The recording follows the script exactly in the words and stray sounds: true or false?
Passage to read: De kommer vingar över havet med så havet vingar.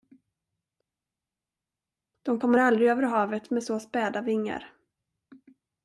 false